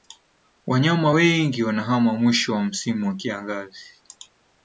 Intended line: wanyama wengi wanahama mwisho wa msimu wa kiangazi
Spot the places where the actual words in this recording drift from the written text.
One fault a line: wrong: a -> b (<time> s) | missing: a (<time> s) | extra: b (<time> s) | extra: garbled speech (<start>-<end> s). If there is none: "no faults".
no faults